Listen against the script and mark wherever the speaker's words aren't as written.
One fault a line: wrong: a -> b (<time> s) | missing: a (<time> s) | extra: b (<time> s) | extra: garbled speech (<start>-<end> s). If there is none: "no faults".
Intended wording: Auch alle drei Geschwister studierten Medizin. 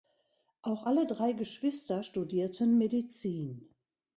no faults